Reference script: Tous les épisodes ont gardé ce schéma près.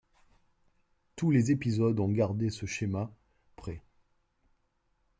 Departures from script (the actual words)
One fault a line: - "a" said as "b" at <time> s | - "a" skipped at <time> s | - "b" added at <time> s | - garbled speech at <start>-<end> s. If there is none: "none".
none